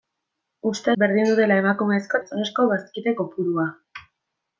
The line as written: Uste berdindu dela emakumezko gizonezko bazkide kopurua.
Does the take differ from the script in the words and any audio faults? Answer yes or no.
no